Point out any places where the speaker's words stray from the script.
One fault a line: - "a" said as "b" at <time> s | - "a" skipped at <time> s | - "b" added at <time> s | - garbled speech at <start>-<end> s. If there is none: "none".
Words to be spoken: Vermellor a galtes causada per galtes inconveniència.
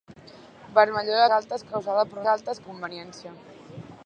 none